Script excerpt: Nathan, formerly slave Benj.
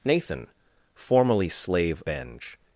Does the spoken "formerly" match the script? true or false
true